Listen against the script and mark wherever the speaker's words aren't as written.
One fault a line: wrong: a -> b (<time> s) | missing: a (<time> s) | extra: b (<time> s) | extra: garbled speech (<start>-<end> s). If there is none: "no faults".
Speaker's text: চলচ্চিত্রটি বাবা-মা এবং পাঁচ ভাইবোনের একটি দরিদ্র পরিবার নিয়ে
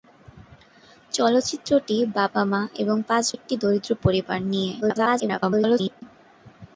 missing: ভাইবোনের (3.3 s)
extra: garbled speech (4.8-6.0 s)